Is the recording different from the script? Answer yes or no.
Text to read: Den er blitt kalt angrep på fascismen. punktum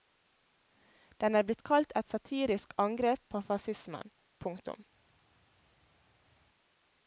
yes